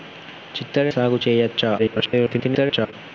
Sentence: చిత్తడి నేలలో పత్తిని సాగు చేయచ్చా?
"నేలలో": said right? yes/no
no